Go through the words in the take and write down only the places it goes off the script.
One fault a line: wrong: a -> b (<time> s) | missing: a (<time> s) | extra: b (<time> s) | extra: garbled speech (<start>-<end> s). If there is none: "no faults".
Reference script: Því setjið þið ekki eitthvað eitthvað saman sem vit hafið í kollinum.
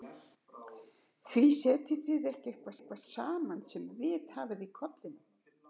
no faults